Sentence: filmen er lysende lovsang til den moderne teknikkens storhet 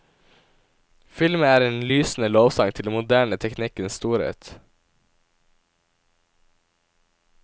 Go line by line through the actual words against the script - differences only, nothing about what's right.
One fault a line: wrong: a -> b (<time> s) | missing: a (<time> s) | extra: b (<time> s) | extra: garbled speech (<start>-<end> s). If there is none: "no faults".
extra: en (1.6 s)